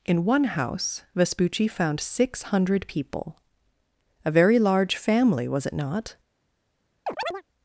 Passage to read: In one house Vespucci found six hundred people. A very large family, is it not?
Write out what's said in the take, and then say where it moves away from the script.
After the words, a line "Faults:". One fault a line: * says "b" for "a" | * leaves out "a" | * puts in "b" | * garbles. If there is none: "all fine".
In one house Vespucci found six hundred people. A very large family, was it not?
Faults:
* says "was" for "is"